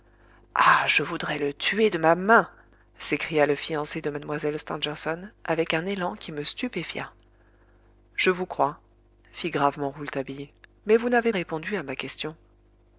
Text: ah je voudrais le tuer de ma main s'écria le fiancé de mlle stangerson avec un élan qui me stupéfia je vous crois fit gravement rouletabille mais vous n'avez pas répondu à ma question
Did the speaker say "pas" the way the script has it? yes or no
no